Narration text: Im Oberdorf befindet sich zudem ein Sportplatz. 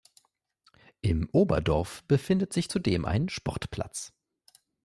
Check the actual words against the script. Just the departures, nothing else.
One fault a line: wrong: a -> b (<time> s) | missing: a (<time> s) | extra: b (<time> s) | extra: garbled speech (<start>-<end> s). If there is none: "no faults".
no faults